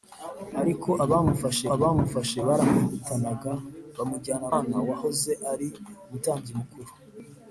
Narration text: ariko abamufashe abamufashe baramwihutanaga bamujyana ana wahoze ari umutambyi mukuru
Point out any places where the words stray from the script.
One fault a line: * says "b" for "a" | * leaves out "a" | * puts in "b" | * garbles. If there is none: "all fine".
all fine